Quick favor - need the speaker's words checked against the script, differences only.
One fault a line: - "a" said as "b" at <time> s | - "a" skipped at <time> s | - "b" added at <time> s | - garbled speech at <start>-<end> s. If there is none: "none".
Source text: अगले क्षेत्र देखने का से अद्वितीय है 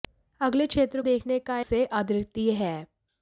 none